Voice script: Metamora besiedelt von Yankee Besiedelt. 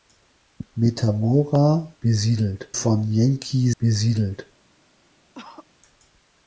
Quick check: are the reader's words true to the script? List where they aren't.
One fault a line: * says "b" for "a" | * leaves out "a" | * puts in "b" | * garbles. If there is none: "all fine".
all fine